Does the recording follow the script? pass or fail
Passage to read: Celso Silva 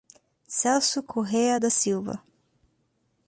fail